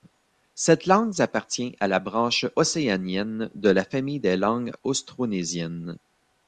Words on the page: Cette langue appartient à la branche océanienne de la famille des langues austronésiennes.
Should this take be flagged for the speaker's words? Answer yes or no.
no